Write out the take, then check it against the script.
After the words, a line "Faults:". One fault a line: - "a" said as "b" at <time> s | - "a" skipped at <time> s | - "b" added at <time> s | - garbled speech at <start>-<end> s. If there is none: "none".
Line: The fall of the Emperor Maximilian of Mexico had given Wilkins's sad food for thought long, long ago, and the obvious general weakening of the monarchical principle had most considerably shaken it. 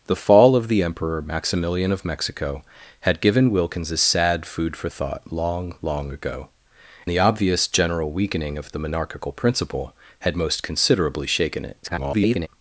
The fall of the Emperor Maximilian of Mexico had given Wilkins's sad food for thought long, long ago, the obvious general weakening of the monarchical principle had most considerably shaken it. [garbled]
Faults:
- "and" skipped at 6.5 s
- garbled speech at 11.8-12.5 s